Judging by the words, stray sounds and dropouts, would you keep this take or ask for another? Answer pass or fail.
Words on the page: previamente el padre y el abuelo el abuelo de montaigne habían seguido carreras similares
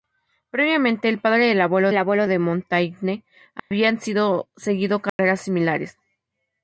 fail